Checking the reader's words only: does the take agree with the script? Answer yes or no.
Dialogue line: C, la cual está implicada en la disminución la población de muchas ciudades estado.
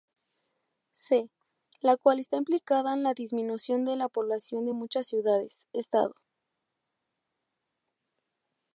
no